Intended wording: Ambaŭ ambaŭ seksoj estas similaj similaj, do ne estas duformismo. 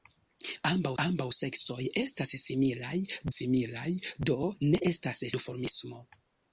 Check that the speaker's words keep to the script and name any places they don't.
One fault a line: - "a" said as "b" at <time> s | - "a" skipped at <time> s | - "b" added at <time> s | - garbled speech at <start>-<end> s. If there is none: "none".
none